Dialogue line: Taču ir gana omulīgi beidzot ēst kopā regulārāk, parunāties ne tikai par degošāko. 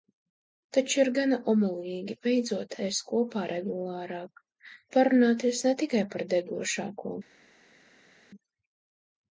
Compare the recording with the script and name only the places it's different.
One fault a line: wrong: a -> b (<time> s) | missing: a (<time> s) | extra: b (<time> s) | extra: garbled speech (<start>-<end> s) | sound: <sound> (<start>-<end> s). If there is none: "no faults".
no faults